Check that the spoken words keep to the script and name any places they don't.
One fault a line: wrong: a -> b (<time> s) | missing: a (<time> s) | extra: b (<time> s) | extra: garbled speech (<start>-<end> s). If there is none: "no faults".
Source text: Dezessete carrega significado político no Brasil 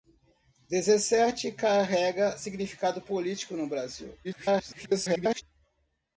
extra: garbled speech (4.2-5.4 s)